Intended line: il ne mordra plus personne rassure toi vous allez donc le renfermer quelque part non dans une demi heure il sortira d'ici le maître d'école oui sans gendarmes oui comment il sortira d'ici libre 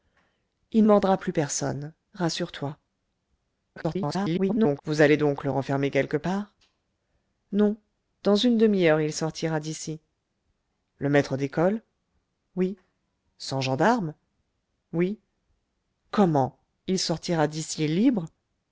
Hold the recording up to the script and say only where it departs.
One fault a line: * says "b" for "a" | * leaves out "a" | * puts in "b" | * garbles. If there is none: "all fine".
* leaves out "ne"
* garbles